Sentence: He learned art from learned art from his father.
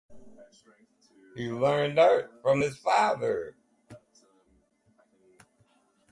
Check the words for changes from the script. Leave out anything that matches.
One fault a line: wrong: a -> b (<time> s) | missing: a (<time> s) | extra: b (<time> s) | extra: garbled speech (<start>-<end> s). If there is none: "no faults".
missing: learned art from (2.6 s)